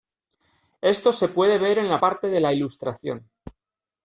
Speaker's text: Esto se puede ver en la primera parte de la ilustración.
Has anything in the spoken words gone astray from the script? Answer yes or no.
yes